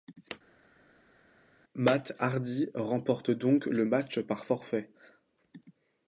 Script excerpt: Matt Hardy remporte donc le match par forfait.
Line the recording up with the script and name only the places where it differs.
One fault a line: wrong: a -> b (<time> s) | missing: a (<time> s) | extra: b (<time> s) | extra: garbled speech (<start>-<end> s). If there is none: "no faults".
no faults